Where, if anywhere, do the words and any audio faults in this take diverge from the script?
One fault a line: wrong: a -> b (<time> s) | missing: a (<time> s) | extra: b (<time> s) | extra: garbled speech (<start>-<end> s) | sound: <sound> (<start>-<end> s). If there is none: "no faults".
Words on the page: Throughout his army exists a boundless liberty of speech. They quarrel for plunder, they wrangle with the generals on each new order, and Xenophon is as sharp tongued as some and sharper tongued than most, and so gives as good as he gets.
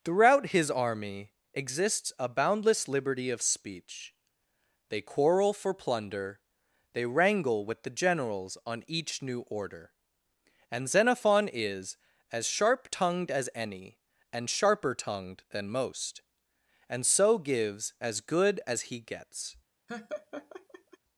wrong: some -> any (13.5 s)
sound: laugh (19.9-21.0 s)